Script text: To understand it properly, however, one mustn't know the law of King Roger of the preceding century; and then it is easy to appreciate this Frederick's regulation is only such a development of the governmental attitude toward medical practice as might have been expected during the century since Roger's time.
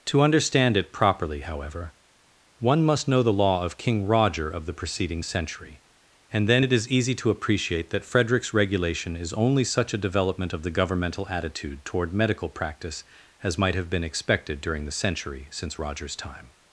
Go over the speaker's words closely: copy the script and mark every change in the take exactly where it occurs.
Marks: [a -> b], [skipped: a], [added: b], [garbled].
To understand it properly, however, one [mustn't -> must] know the law of King Roger of the preceding century; and then it is easy to appreciate [this -> that] Frederick's regulation is only such a development of the governmental attitude toward medical practice as might have been expected during the century since Roger's time.